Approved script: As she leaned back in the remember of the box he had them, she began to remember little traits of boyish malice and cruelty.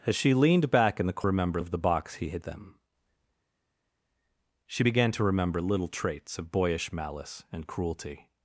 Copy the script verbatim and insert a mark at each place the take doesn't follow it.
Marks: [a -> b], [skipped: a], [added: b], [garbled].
As she leaned back in the remember of the box he had them, she began to remember little traits of boyish malice and cruelty.